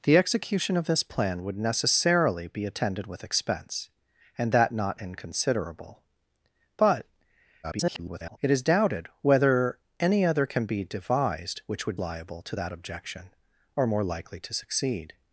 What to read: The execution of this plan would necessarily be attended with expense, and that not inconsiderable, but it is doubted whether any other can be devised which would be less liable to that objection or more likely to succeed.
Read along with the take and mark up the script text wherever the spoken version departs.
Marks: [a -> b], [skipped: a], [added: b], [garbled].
The execution of this plan would necessarily be attended with expense, and that not inconsiderable, but [garbled] it is doubted whether any other can be devised which would [skipped: be less] liable to that objection or more likely to succeed.